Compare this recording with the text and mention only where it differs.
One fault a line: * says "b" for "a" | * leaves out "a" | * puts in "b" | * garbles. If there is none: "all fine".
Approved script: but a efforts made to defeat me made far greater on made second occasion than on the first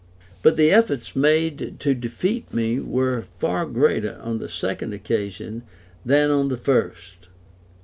* says "the" for "a"
* says "were" for "made"
* says "the" for "made"